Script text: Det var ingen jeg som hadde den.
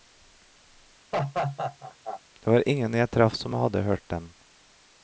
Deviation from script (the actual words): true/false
true